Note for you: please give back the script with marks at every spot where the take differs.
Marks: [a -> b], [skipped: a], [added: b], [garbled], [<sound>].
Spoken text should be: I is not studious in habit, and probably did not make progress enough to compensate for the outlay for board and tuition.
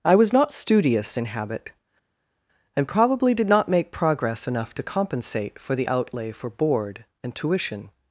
I [is -> was] not studious in habit, and probably did not make progress enough to compensate for the outlay for board and tuition.